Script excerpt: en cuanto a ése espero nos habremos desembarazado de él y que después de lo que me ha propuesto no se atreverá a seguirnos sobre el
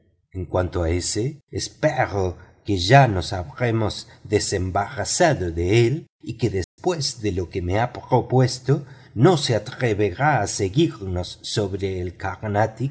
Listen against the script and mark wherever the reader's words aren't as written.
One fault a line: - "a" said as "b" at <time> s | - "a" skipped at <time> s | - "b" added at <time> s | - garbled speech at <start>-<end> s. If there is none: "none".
- "que ya" added at 2.6 s